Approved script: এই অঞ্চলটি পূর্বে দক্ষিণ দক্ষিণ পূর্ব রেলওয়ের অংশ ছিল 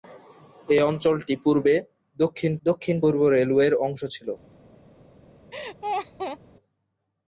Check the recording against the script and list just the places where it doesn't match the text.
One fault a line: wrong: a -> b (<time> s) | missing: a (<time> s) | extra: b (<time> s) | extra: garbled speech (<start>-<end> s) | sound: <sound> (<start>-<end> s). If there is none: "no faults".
sound: laugh (5.5-6.4 s)